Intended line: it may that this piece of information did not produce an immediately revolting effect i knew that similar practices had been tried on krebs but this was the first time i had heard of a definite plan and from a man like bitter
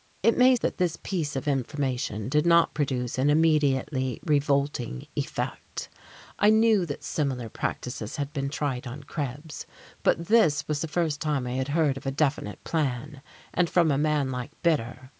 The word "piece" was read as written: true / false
true